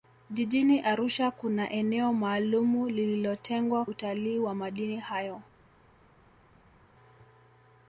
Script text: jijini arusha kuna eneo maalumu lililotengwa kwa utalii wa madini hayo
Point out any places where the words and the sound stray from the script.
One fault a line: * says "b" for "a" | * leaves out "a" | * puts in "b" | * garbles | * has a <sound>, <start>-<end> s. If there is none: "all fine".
* leaves out "kwa"